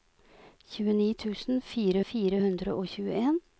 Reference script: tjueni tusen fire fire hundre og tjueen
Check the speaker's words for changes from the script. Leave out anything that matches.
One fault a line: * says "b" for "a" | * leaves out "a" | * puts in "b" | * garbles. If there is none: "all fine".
all fine